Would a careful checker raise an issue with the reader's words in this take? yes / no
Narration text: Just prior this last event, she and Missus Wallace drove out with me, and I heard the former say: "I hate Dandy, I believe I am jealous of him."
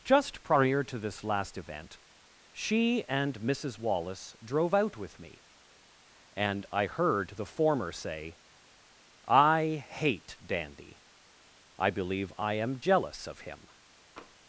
yes